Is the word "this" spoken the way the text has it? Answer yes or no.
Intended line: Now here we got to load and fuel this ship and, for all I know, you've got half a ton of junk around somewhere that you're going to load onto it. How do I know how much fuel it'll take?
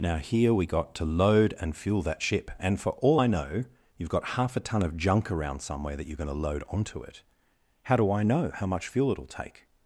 no